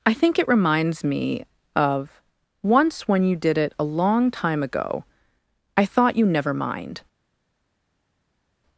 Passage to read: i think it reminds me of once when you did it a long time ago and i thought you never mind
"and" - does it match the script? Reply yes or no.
no